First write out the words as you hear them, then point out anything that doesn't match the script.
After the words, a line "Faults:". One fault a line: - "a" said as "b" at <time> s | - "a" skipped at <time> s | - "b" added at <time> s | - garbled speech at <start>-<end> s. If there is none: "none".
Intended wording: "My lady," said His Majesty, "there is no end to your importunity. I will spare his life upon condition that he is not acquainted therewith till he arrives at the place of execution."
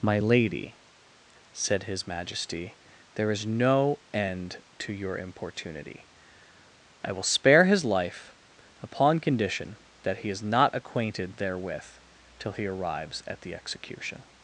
"My lady," said His Majesty, "there is no end to your importunity. I will spare his life upon condition that he is not acquainted therewith till he arrives at the execution."
Faults:
- "place of" skipped at 13.5 s